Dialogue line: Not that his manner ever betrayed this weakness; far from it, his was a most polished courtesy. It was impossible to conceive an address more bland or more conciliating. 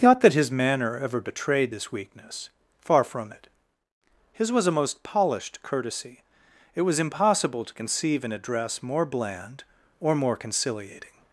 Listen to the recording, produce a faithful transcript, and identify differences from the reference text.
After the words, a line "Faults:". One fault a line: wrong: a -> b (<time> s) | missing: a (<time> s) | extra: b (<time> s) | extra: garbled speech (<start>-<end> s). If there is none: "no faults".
Not that his manner ever betrayed this weakness; far from it, his was a most polished courtesy. It was impossible to conceive an address more bland or more conciliating.
Faults:
no faults